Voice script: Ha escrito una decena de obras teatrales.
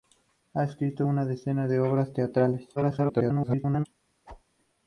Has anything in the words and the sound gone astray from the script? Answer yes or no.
yes